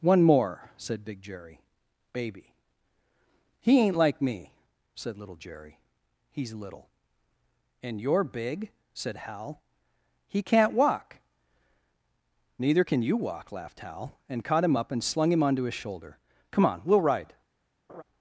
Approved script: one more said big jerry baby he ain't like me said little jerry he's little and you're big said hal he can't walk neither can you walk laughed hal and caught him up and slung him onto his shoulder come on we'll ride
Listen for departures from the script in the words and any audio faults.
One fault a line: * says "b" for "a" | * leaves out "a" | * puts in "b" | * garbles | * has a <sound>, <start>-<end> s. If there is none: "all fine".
* has a laugh, 17.9-18.0 s